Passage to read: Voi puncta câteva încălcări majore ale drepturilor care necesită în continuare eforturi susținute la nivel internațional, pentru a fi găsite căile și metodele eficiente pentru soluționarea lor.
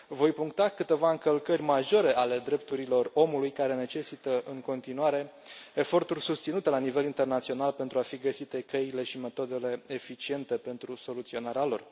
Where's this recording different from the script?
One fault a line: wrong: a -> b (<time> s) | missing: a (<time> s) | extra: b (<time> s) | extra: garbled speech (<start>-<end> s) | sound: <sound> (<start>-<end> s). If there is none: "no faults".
extra: omului (3.1 s)